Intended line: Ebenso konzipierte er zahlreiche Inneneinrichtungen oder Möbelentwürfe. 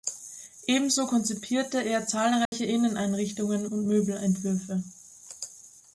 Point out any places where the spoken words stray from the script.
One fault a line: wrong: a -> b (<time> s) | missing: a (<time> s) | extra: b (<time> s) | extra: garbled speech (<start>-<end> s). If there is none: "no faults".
wrong: oder -> und (3.6 s)